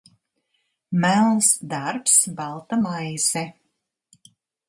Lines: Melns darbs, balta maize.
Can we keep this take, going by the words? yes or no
yes